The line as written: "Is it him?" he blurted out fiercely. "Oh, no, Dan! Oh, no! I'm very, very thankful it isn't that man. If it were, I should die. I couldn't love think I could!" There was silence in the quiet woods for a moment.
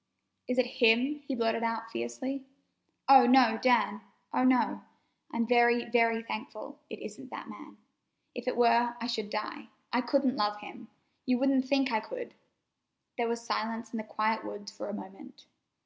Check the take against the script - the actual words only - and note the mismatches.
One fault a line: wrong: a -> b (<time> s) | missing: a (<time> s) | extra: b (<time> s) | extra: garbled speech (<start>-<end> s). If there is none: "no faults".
extra: him You wouldn't (10.6 s)